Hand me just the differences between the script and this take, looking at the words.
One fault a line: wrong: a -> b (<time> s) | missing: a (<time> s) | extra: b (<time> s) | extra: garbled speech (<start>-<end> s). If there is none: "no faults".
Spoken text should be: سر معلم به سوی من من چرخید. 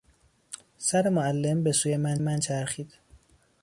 no faults